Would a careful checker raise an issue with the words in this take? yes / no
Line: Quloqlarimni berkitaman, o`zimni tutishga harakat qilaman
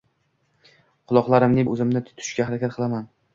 yes